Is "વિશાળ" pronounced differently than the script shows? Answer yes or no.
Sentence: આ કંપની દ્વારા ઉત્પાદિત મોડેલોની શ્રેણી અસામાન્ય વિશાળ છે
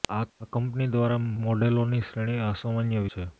yes